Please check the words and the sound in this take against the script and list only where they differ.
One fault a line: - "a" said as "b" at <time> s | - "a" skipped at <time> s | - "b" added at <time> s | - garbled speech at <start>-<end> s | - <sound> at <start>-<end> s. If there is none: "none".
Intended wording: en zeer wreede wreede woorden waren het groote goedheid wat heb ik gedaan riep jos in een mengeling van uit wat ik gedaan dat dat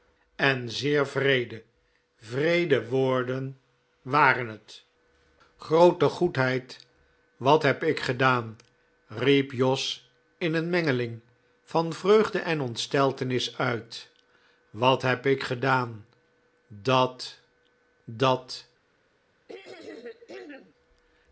- "vreugde en ontsteltenis" added at 11.9 s
- "heb" added at 15.0 s
- throat clearing at 19.5-20.7 s